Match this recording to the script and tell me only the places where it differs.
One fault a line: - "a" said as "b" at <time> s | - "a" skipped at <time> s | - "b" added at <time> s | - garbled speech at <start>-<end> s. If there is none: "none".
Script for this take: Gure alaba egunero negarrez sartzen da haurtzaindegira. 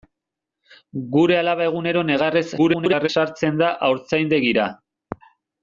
- garbled speech at 2.6-3.1 s